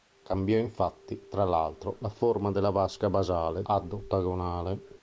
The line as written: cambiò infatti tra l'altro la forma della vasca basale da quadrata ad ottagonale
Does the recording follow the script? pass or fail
fail